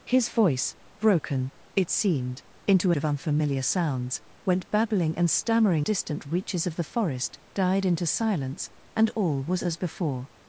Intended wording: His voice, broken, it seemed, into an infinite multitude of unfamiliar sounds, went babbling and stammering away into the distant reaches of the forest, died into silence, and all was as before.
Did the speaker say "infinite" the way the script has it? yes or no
no